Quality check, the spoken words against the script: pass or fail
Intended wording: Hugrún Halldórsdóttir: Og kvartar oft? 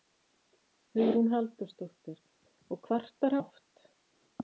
pass